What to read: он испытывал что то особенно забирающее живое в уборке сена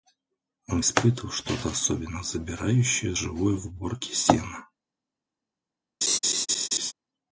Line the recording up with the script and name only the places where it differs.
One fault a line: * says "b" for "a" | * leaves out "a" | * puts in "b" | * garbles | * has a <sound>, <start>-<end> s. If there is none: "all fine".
* has a laugh, 6.0-6.9 s